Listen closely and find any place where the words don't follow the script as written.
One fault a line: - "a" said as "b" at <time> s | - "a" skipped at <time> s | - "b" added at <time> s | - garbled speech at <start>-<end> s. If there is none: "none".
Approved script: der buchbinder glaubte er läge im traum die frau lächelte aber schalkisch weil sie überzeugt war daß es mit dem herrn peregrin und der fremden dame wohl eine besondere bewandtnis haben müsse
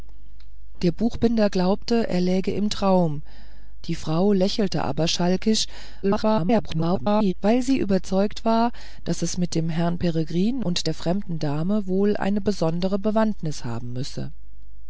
- garbled speech at 6.0-7.3 s